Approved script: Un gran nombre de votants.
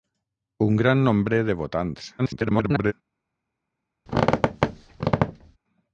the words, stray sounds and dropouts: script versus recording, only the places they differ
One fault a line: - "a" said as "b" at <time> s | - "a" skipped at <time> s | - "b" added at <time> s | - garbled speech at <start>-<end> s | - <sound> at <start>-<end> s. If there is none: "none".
- garbled speech at 2.2-2.9 s
- squeak at 4.1-5.6 s